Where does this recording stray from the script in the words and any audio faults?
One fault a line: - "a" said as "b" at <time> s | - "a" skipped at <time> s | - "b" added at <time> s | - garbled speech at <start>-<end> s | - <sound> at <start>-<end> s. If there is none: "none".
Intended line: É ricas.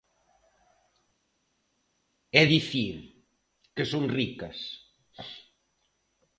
- "dicir que son" added at 2.4 s